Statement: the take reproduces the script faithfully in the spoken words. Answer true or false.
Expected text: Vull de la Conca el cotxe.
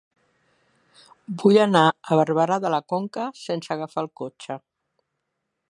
false